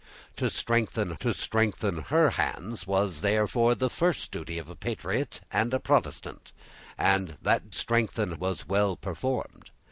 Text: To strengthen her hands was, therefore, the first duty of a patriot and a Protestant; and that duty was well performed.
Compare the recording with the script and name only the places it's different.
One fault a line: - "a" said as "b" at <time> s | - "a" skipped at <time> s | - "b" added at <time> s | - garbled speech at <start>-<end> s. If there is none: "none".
- "to strengthen" added at 1.2 s
- "duty" said as "strengthen" at 7.7 s